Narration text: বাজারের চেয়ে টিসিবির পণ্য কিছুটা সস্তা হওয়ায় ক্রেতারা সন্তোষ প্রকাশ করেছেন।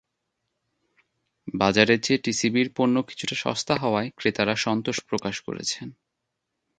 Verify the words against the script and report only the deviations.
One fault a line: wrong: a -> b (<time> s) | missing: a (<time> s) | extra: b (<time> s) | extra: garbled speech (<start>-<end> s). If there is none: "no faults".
no faults